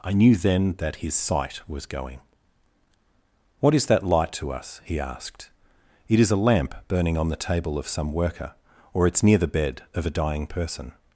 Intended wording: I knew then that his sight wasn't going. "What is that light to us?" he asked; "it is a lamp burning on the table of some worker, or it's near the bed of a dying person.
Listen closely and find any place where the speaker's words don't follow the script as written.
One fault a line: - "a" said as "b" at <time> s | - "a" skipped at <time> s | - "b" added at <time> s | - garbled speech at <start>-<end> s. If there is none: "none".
- "wasn't" said as "was" at 1.7 s